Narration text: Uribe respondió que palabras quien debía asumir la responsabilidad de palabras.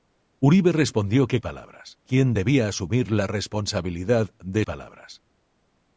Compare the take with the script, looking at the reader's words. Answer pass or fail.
pass